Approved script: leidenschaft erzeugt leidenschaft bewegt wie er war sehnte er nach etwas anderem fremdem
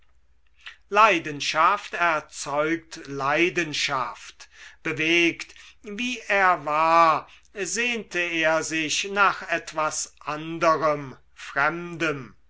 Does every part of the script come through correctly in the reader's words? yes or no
no